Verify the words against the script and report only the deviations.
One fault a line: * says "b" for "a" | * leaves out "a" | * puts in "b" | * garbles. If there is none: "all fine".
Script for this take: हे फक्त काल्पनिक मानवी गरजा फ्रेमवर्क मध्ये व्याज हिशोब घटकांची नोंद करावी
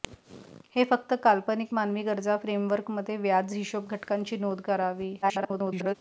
* garbles